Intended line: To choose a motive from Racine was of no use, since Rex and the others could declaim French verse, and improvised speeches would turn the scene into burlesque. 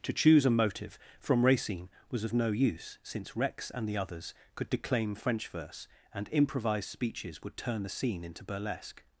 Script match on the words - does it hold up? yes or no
yes